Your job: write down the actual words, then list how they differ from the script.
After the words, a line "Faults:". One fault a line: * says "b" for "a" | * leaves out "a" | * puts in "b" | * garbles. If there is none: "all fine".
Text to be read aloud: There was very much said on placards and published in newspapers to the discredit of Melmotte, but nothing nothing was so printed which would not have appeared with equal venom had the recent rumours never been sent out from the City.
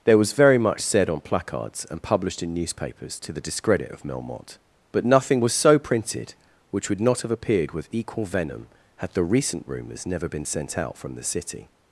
There was very much said on placards and published in newspapers to the discredit of Melmotte, but nothing was so printed which would not have appeared with equal venom had the recent rumours never been sent out from the City.
Faults:
* leaves out "nothing"